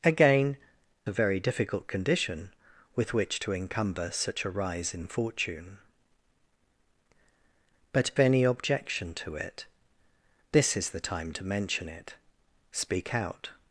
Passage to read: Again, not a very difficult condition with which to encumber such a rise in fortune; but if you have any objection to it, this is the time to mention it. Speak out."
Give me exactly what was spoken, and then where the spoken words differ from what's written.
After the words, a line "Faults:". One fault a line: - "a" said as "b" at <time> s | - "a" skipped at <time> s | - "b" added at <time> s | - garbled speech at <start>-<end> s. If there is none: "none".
Again, a very difficult condition with which to encumber such a rise in fortune; but any objection to it, this is the time to mention it. Speak out."
Faults:
- "not" skipped at 0.6 s
- "if you have" skipped at 8.1 s